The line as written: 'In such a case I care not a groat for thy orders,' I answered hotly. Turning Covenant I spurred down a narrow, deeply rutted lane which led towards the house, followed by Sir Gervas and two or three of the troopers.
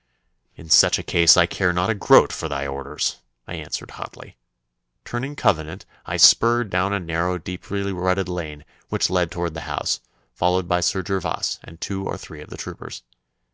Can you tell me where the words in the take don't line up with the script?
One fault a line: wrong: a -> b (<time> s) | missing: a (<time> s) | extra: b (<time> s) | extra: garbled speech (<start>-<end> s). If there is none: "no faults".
no faults